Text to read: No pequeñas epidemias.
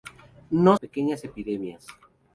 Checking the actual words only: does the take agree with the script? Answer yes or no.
yes